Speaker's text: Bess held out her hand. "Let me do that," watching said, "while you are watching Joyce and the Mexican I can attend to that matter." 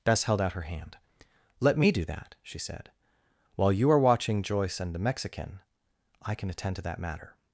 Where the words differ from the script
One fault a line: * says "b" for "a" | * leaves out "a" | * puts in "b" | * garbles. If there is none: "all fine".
* says "she" for "watching"